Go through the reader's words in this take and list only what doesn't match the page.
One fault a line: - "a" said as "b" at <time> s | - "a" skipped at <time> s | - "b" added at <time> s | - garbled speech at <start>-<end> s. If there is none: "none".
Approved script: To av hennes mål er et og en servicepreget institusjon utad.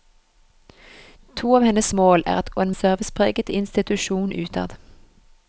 none